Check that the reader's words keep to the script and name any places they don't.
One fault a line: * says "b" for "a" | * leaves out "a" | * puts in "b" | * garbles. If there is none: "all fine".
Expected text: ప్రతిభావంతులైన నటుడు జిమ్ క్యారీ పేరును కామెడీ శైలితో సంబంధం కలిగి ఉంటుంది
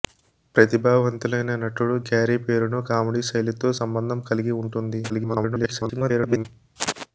* leaves out "జిమ్"
* garbles